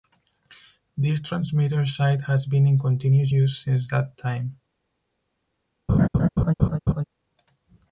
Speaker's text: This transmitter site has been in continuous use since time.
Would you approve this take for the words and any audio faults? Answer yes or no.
no